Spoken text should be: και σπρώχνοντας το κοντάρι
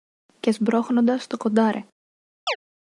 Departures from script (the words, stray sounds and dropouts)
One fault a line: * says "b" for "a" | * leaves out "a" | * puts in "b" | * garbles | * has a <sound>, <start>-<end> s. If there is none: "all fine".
* has a chirp, 2.5-2.6 s